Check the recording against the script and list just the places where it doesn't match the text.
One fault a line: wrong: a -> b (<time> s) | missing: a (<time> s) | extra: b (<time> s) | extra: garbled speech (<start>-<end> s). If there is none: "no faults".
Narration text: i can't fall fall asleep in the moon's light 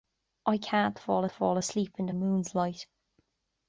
no faults